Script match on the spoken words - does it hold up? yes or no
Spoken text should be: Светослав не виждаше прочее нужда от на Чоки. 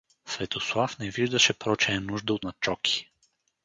yes